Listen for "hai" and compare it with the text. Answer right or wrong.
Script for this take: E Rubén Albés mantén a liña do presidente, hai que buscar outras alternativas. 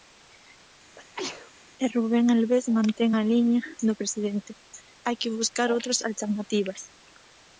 right